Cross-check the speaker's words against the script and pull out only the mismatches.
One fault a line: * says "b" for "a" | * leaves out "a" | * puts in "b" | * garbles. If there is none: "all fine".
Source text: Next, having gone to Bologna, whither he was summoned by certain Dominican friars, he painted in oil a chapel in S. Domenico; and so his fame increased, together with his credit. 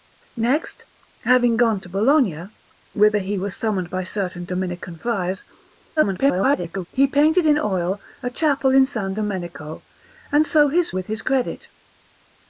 * garbles
* leaves out "fame increased together"